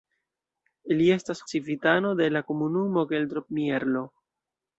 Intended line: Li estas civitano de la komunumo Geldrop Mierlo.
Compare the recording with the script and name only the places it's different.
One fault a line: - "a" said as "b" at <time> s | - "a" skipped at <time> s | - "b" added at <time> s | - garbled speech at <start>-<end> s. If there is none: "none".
none